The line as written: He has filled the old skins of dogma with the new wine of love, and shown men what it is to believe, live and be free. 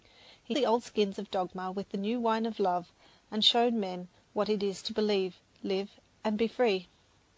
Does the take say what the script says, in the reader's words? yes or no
no